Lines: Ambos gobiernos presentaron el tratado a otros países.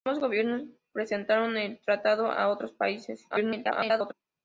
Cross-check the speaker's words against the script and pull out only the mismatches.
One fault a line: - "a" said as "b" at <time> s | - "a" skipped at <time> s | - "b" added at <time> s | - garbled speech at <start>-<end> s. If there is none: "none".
- garbled speech at 3.3-4.1 s